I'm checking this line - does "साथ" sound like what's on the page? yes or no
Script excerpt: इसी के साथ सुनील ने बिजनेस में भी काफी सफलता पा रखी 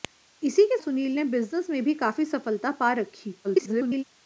no